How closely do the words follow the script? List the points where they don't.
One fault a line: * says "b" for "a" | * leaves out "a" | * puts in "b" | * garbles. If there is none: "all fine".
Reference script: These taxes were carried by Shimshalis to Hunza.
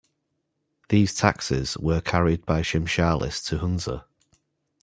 all fine